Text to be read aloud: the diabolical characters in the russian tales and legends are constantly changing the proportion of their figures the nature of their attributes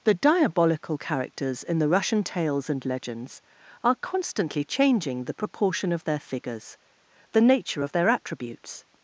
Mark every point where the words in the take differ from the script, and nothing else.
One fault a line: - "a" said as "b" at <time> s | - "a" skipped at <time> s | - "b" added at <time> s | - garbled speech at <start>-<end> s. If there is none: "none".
none